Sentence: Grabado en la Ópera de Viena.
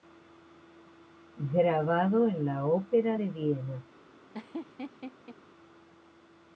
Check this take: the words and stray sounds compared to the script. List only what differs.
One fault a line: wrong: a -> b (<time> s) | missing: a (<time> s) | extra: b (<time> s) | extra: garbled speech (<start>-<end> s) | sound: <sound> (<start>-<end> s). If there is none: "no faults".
sound: laugh (4.3-5.4 s)